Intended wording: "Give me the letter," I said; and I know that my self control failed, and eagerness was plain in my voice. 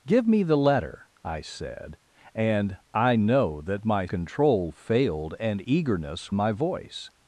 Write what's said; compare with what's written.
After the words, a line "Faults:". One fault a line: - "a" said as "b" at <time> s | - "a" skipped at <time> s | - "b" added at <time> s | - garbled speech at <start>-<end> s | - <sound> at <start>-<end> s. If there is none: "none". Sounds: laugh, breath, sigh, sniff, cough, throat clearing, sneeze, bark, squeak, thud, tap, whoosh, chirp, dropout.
"Give me the letter," I said; and I know that my control failed, and eagerness my voice.
Faults:
- "self" skipped at 4.1 s
- "was plain in" skipped at 6.3 s